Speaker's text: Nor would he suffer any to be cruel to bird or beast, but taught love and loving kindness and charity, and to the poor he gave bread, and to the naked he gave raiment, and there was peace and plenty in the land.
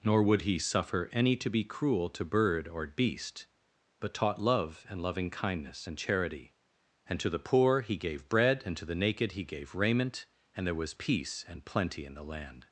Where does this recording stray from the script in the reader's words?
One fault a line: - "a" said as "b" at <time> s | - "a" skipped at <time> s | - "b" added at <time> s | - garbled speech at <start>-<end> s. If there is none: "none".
none